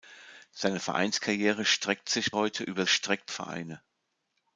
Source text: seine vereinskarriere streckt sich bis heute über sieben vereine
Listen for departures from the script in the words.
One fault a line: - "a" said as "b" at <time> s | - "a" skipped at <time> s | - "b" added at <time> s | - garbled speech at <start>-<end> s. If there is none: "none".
- "bis" skipped at 2.3 s
- "sieben" said as "streckt" at 2.8 s